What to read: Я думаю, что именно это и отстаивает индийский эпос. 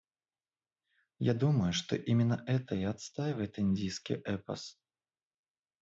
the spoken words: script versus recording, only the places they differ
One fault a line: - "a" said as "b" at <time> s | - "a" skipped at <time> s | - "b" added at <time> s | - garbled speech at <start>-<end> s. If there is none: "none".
none